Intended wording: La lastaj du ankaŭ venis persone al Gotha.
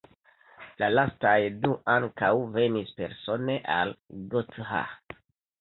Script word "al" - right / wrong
right